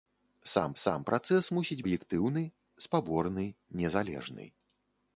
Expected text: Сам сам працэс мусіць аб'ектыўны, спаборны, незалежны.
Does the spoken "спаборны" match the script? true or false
true